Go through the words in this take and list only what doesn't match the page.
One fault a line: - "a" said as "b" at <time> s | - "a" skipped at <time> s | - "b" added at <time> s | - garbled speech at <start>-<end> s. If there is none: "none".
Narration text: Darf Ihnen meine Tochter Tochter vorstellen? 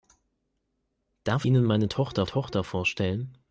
none